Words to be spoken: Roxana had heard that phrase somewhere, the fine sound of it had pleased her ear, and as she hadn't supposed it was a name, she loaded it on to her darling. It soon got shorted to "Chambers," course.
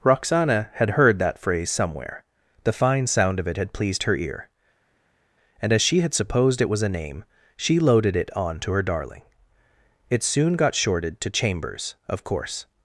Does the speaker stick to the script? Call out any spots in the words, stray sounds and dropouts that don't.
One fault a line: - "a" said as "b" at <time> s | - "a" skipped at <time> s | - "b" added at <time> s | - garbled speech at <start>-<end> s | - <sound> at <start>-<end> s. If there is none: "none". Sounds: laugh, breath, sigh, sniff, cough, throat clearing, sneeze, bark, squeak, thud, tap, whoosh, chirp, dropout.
- "hadn't" said as "had" at 6.0 s
- "of" added at 12.1 s